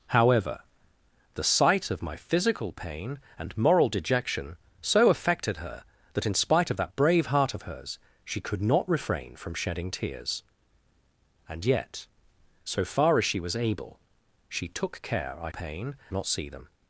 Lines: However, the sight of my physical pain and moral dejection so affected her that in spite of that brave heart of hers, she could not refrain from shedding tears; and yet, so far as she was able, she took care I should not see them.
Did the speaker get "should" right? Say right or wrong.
wrong